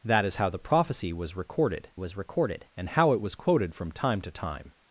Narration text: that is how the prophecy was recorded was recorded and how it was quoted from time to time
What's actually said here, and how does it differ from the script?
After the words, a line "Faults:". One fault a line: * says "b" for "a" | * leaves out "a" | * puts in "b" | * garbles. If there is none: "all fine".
that is how the prophecy was recorded was recorded and how it was quoted from time to time
Faults:
all fine